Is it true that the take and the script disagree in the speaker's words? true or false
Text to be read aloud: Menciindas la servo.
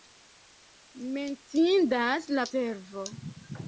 false